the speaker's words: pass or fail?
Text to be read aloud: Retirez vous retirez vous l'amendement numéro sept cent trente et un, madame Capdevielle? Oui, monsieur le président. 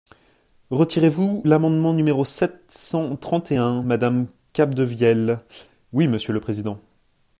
fail